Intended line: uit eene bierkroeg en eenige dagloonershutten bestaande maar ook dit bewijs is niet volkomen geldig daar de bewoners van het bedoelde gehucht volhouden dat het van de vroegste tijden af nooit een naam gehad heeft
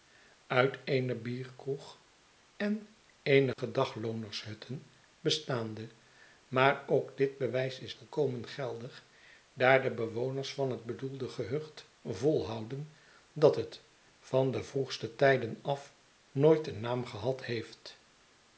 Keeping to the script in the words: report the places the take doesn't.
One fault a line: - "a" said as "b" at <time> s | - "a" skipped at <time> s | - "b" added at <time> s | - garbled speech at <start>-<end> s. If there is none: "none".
- "niet" skipped at 8.0 s